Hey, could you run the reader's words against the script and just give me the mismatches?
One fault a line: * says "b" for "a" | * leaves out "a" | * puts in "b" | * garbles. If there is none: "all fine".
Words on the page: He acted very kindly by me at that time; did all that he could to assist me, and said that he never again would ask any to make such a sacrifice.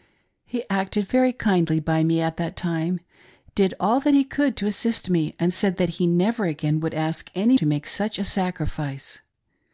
all fine